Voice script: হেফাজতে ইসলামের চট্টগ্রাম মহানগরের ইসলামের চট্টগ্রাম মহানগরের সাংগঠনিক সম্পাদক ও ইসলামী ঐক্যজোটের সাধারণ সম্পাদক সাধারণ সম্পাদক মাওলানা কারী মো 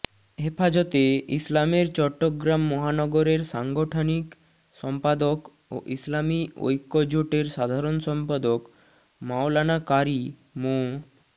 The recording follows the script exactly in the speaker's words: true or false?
false